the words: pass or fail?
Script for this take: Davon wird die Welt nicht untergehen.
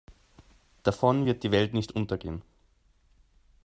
pass